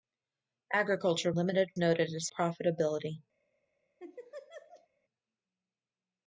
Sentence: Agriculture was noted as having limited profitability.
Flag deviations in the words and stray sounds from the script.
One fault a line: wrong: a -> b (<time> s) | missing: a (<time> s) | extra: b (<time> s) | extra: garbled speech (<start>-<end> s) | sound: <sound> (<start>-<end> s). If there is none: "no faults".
wrong: was -> limited (1.3 s)
missing: having limited (2.3 s)
sound: laugh (4.0-4.9 s)